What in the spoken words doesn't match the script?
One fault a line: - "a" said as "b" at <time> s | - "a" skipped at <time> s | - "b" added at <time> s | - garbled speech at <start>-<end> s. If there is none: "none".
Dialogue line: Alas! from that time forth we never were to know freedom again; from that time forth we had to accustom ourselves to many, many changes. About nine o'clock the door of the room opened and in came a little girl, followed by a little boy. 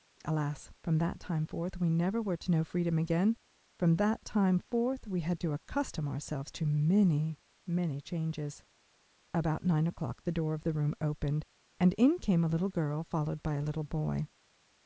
none